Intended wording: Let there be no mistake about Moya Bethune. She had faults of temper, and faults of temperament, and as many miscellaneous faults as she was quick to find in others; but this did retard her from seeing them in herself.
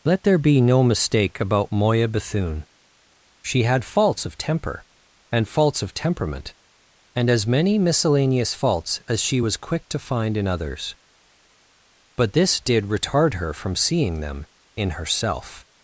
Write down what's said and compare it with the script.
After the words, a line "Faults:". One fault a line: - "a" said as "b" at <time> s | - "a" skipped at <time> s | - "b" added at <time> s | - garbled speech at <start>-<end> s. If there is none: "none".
Let there be no mistake about Moya Bethune. She had faults of temper, and faults of temperament, and as many miscellaneous faults as she was quick to find in others; but this did retard her from seeing them in herself.
Faults:
none